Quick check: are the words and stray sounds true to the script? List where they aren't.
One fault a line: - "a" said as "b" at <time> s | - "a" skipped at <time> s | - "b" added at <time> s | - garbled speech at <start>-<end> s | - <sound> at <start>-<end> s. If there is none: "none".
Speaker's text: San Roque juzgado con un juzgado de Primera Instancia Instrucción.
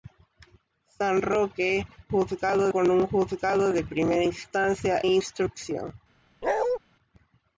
- bark at 6.4-6.8 s